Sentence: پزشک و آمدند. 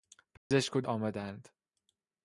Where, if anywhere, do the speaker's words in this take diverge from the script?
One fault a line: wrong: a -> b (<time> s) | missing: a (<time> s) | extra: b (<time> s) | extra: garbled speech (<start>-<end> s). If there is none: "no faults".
no faults